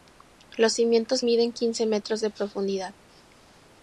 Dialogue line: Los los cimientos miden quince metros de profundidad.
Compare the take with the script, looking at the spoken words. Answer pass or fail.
fail